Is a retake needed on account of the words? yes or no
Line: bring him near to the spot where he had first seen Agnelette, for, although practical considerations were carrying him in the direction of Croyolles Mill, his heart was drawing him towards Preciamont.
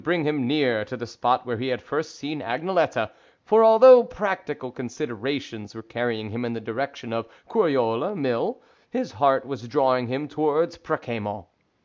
no